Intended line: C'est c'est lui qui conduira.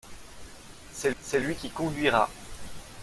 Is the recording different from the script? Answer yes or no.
no